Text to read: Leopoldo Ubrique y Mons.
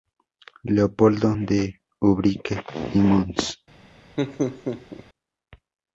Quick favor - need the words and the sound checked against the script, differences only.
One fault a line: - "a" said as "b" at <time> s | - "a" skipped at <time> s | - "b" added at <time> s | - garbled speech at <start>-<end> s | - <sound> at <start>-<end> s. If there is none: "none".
- "de" added at 1.4 s
- laugh at 4.2-5.0 s